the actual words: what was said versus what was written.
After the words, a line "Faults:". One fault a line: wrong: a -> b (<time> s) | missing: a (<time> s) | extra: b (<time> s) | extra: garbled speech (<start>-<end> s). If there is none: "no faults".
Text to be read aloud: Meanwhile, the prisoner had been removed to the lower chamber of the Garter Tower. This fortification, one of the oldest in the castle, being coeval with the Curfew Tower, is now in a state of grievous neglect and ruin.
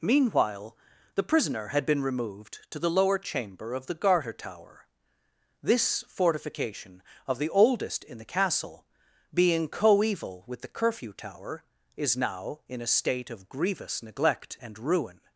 Meanwhile, the prisoner had been removed to the lower chamber of the Garter Tower. This fortification, of the oldest in the castle, being coeval with the Curfew Tower, is now in a state of grievous neglect and ruin.
Faults:
missing: one (7.0 s)